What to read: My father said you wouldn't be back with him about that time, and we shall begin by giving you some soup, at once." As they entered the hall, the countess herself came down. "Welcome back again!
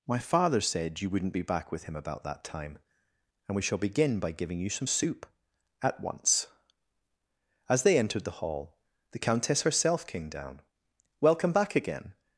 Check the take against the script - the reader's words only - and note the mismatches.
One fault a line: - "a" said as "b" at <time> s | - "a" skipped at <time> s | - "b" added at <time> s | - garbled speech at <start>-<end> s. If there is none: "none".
none